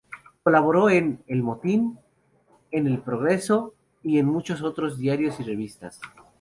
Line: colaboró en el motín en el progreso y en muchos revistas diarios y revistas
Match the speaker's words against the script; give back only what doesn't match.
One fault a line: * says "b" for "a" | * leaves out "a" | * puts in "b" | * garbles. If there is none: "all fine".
* says "otros" for "revistas"